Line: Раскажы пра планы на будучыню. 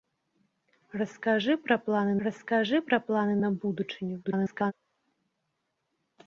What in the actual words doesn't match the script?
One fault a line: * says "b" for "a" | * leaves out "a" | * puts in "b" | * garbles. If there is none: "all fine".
* puts in "раскажы пра планы"
* garbles